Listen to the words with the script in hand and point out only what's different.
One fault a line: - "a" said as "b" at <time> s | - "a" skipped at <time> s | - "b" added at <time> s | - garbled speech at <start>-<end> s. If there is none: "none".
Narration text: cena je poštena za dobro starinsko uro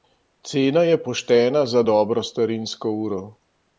none